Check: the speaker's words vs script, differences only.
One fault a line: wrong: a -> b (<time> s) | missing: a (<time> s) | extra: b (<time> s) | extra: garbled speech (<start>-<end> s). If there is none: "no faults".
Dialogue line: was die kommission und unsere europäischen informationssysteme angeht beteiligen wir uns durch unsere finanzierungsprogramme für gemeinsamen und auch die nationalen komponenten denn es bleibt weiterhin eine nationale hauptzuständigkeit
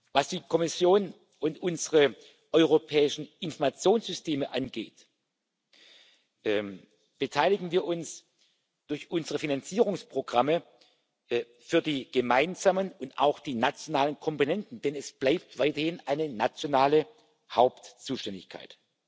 extra: die (11.8 s)